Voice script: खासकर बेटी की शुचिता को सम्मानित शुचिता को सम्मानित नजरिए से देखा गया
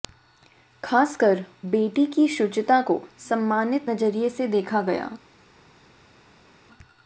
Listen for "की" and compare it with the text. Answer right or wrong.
right